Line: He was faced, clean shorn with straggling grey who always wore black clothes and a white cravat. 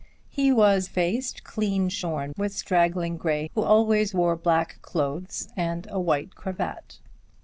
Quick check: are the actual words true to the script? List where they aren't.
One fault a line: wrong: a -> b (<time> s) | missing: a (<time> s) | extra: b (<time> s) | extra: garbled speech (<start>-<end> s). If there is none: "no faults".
no faults